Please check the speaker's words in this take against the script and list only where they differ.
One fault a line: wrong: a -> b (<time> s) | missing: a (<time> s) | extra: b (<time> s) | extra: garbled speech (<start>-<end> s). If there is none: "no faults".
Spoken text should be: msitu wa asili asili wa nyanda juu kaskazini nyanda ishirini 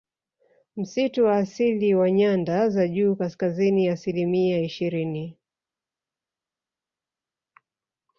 missing: asili (1.9 s)
extra: za (2.7 s)
wrong: nyanda -> asilimia (3.9 s)